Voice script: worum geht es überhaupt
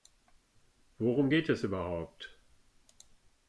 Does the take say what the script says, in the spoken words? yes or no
yes